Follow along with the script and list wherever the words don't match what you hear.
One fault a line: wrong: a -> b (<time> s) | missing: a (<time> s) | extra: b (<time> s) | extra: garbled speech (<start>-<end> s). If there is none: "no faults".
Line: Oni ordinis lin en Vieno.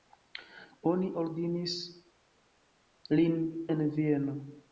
no faults